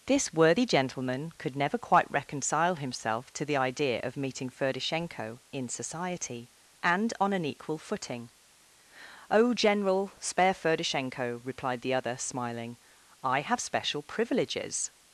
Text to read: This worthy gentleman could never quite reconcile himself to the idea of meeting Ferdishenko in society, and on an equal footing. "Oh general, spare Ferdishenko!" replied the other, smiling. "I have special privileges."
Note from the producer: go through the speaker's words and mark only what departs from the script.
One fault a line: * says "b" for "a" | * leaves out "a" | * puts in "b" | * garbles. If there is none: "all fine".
all fine